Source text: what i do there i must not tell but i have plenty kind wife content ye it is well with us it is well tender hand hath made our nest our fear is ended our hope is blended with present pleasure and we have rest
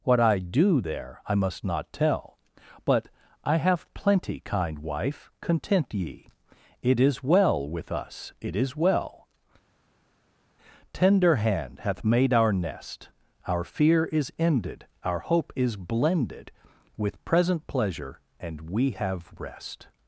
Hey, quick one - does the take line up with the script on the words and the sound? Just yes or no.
yes